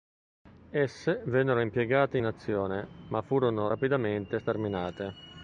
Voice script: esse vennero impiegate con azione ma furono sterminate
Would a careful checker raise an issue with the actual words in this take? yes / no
yes